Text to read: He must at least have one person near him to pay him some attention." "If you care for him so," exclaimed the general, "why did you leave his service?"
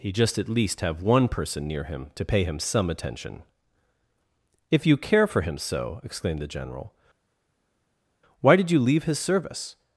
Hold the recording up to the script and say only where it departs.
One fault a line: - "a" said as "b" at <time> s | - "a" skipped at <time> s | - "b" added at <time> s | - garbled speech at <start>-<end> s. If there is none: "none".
- "must" said as "just" at 0.1 s